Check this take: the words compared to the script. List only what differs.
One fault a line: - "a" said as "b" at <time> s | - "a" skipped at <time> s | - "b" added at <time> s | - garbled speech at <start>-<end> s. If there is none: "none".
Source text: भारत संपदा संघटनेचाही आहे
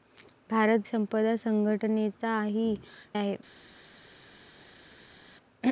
none